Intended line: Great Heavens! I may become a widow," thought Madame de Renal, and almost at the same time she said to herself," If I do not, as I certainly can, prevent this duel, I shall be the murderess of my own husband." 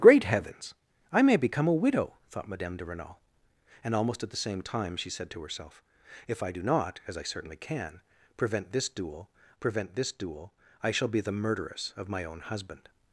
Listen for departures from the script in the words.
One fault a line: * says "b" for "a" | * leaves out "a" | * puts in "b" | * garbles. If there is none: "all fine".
* puts in "prevent this duel"